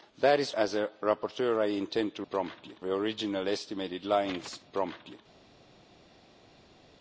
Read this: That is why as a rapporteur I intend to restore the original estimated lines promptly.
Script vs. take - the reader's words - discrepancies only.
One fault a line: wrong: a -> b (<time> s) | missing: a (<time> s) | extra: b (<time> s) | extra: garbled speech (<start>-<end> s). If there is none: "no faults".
missing: why (0.6 s)
wrong: restore -> promptly (2.3 s)